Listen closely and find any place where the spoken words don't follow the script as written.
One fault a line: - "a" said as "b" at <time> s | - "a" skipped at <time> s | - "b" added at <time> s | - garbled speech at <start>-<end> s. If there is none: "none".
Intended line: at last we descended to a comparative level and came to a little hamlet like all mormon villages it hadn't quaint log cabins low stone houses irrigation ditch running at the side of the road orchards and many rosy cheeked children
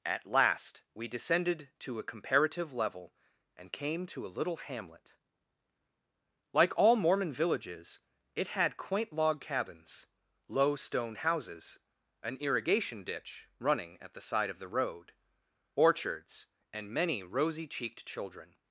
- "hadn't" said as "had" at 8.5 s
- "an" added at 12.2 s